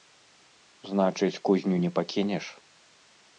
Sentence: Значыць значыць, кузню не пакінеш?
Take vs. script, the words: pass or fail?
fail